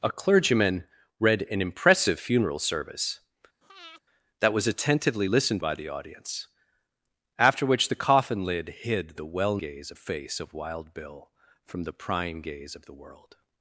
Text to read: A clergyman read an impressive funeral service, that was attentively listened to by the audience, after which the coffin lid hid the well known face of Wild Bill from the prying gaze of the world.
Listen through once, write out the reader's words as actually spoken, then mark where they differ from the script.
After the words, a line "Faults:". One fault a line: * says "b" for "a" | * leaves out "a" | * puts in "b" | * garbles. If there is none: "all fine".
A clergyman read an impressive funeral service, that was attentively listened by the audience, after which the coffin lid hid the well gaze face of Wild Bill from the prying gaze of the world.
Faults:
* leaves out "to"
* says "gaze" for "known"